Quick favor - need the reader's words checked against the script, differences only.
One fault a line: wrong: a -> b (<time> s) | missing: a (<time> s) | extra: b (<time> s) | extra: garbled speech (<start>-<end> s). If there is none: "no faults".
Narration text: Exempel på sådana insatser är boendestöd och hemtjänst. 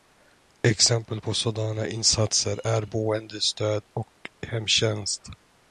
no faults